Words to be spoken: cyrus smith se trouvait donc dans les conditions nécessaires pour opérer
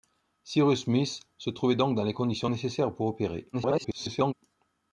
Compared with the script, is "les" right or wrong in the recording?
right